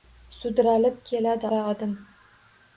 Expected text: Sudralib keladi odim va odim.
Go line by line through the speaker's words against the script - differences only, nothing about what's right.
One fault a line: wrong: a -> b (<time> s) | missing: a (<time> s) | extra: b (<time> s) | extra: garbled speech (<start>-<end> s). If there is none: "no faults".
missing: odim (1.5 s)